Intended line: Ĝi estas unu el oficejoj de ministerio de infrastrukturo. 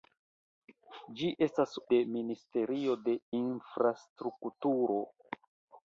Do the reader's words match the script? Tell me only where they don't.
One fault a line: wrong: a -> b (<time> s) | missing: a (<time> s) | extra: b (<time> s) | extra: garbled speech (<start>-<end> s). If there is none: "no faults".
missing: unu el oficejoj (1.7 s)